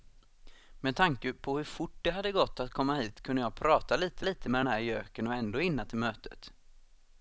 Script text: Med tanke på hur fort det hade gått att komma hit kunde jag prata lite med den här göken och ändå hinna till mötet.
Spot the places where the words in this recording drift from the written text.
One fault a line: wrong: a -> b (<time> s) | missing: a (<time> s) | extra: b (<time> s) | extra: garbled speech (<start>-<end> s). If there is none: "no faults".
extra: lite (4.2 s)